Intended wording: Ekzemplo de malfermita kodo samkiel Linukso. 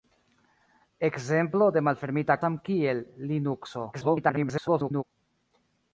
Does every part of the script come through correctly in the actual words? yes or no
no